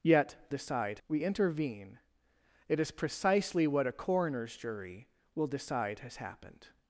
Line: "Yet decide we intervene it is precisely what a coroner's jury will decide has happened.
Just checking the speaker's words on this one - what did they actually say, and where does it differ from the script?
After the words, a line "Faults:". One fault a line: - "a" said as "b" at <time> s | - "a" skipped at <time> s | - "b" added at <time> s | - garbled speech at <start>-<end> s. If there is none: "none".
"Yet decide we intervene it is precisely what a coroner's jury will decide has happened.
Faults:
none